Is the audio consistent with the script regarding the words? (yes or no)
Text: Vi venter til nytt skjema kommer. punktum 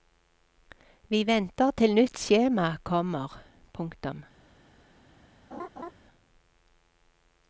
yes